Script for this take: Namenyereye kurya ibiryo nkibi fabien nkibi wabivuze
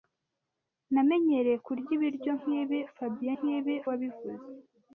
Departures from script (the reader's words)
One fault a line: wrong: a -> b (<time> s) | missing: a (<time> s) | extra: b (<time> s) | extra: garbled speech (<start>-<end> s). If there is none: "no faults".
no faults